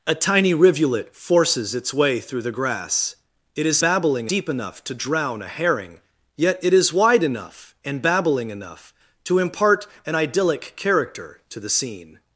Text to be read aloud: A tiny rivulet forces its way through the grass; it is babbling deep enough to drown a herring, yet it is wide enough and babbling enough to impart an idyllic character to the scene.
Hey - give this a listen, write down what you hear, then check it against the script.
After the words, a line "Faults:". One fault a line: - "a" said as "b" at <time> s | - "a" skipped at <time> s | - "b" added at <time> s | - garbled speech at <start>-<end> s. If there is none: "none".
A tiny rivulet forces its way through the grass; it is babbling deep enough to drown a herring, yet it is wide enough and babbling enough to impart an idyllic character to the scene.
Faults:
none